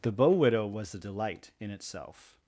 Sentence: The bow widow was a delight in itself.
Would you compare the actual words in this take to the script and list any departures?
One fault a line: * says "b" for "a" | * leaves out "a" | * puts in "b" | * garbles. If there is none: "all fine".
all fine